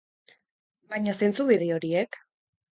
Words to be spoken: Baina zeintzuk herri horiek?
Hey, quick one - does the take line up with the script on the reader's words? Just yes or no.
yes